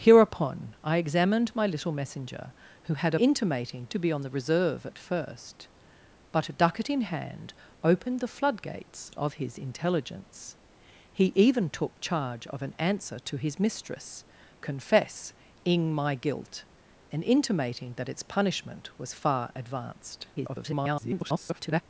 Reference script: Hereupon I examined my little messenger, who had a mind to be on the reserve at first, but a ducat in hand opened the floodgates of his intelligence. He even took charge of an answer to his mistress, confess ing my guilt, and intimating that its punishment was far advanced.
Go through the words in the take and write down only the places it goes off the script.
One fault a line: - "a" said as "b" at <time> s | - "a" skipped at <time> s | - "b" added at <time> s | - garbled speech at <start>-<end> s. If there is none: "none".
- "mind" said as "intimating" at 3.2 s
- garbled speech at 20.3-21.8 s